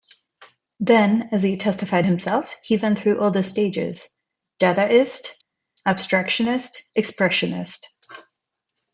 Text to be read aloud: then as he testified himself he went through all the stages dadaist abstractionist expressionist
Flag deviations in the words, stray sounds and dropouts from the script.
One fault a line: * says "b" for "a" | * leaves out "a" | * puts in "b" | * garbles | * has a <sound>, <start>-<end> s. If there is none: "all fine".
all fine